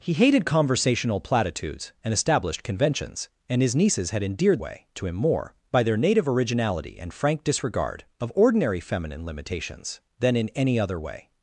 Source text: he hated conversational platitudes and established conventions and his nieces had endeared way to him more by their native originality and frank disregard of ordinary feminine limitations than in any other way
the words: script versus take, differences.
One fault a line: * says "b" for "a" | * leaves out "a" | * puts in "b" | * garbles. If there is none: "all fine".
all fine